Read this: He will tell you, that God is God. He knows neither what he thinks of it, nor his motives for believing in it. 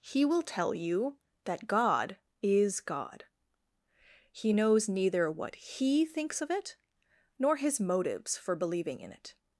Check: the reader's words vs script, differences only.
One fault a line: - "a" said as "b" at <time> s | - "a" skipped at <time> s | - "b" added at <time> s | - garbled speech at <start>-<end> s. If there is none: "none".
none